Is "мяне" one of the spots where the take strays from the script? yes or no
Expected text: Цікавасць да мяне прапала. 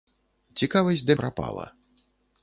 yes